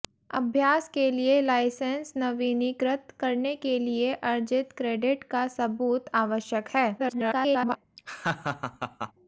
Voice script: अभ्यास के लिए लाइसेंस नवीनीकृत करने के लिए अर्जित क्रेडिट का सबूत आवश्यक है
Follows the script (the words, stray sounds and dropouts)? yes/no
no